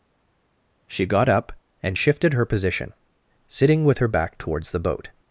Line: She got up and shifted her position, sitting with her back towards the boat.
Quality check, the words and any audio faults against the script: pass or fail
pass